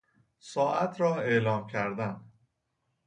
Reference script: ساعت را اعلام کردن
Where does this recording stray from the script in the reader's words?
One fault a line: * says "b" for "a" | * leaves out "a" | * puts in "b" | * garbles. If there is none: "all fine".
all fine